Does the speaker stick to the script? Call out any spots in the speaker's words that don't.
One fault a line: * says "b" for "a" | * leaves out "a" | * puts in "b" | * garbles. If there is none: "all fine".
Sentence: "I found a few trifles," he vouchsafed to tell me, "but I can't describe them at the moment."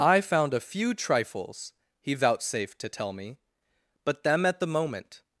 * leaves out "I can't describe"